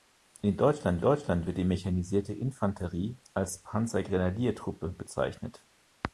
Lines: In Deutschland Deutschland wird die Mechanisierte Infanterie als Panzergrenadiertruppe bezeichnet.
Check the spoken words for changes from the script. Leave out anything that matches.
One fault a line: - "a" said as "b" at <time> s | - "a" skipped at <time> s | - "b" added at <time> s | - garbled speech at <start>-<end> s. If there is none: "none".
none